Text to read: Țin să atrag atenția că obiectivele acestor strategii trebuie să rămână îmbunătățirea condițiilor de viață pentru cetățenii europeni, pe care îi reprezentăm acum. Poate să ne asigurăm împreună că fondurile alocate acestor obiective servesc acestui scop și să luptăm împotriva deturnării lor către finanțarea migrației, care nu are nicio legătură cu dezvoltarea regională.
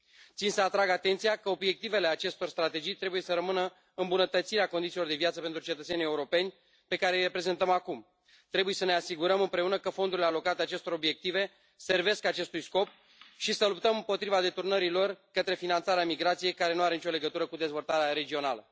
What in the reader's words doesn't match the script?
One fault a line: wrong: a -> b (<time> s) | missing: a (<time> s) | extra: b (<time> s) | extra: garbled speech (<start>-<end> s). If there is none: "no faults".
wrong: Poate -> Trebuie (8.5 s)